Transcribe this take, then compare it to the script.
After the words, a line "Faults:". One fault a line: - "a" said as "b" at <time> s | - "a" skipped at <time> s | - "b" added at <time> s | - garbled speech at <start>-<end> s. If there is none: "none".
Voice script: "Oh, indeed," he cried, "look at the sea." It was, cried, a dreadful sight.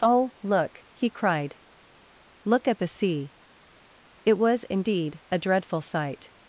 "Oh, look," he cried, "look at the sea." It was, indeed, a dreadful sight.
Faults:
- "indeed" said as "look" at 0.4 s
- "cried" said as "indeed" at 4.6 s